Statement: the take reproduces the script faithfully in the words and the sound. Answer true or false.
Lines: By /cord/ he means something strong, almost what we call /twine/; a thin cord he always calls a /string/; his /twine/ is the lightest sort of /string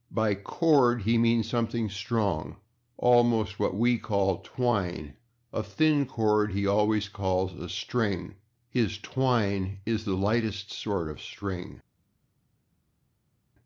true